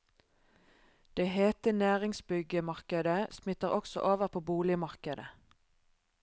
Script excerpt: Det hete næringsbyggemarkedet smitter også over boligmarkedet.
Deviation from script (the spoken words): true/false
true